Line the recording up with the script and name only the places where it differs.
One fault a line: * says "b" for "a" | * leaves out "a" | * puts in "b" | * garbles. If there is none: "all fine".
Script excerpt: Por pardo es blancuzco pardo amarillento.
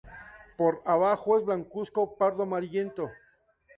* says "abajo" for "pardo"